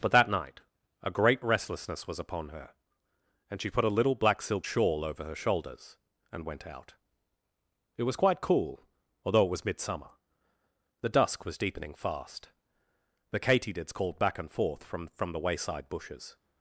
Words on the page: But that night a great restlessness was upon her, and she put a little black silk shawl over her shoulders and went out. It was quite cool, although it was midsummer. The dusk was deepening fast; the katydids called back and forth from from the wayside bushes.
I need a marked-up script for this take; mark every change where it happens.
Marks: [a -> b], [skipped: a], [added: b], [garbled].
But that night a great restlessness was upon her, and she put a little black silk shawl over her shoulders and went out. It was quite cool, although it was midsummer. The dusk was deepening fast; the katydids called back and forth from from the wayside bushes.